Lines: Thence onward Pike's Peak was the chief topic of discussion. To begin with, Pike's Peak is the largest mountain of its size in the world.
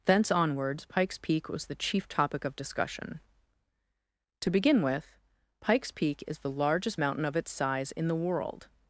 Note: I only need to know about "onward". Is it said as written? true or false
false